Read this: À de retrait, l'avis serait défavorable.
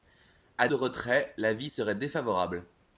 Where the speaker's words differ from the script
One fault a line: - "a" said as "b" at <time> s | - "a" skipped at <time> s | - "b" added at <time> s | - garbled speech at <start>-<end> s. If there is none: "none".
none